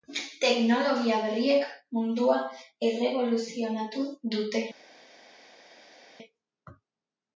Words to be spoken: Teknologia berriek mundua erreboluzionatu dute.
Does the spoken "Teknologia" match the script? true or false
true